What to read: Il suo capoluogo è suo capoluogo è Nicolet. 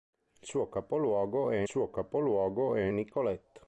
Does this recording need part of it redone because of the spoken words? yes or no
no